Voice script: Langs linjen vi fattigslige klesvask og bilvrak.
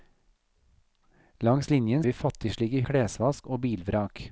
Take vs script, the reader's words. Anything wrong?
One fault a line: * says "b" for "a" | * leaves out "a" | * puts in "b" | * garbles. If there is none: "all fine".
all fine